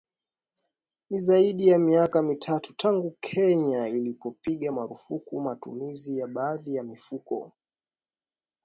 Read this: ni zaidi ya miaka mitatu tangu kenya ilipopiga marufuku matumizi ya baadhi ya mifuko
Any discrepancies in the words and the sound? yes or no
no